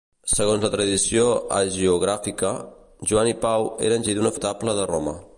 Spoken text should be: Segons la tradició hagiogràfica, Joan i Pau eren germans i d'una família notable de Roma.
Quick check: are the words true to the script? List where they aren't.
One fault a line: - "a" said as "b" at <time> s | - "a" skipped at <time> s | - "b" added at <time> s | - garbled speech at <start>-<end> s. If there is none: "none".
- "germans" skipped at 4.1 s
- "família" skipped at 4.3 s